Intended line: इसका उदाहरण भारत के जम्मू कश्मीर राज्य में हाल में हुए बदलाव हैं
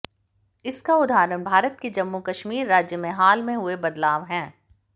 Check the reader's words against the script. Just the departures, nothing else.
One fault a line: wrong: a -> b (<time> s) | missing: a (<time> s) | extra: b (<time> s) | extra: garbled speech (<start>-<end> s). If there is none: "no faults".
no faults